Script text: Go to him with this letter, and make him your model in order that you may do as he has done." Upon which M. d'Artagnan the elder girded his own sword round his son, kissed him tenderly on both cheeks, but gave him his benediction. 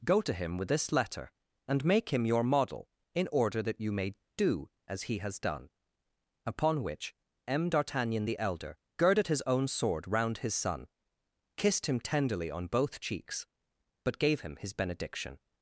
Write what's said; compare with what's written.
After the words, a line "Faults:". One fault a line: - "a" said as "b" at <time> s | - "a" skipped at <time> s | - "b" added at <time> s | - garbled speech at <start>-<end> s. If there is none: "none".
Go to him with this letter, and make him your model in order that you may do as he has done." Upon which M. d'Artagnan the elder girded his own sword round his son, kissed him tenderly on both cheeks, but gave him his benediction.
Faults:
none